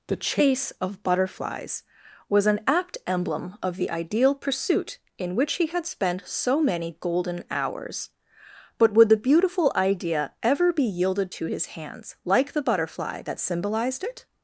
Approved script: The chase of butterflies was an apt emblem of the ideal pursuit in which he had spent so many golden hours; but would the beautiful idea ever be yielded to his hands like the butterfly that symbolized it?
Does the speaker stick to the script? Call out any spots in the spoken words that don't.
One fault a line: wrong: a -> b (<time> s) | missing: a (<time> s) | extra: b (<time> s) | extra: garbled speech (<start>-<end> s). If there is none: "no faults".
no faults